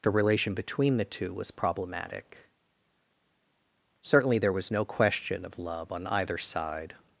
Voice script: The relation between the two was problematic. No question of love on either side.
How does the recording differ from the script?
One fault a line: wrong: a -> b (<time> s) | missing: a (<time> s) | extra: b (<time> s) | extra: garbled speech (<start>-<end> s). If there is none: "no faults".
extra: Certainly there was (4.0 s)